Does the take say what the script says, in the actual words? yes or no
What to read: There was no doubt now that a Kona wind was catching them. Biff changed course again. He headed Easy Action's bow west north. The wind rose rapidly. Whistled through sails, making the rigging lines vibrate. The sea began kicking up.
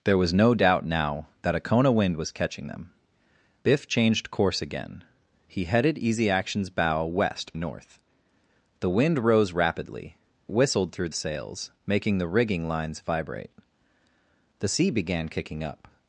yes